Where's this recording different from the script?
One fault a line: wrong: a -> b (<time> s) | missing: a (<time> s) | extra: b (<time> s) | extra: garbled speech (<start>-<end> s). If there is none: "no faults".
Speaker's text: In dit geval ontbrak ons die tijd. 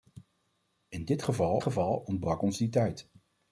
extra: geval (1.6 s)